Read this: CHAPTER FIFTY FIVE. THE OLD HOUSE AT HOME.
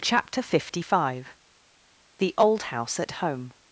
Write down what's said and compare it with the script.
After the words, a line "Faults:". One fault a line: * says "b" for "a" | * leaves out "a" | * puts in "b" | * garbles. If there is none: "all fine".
CHAPTER FIFTY FIVE. THE OLD HOUSE AT HOME.
Faults:
all fine